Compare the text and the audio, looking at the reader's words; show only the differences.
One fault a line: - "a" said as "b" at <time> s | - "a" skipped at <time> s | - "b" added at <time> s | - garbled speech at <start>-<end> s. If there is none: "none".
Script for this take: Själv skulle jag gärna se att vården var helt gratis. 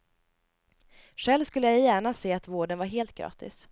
none